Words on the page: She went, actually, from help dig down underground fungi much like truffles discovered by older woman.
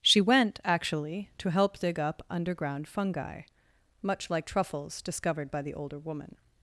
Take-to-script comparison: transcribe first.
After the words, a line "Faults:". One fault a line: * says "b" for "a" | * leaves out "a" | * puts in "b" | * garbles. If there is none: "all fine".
She went, actually, to help dig up underground fungi much like truffles discovered by the older woman.
Faults:
* says "to" for "from"
* says "up" for "down"
* puts in "the"